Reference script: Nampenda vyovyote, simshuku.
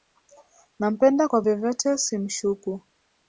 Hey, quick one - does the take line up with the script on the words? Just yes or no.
no